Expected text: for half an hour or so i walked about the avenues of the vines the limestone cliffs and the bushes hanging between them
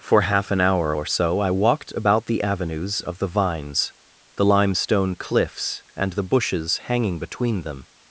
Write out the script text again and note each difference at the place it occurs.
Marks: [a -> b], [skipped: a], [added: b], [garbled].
for half an hour or so i walked about the avenues of the vines the limestone cliffs and the bushes hanging between them